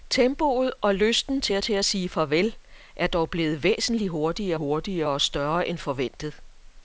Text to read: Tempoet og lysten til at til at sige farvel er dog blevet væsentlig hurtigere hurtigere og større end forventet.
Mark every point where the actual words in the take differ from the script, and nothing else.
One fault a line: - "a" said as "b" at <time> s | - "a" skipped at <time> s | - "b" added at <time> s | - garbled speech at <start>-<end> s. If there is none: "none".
none